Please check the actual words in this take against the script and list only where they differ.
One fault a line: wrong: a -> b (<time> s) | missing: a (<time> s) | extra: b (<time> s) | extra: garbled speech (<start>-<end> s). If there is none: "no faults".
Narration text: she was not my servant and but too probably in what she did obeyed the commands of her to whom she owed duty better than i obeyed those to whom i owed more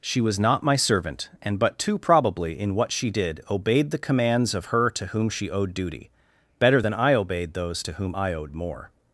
no faults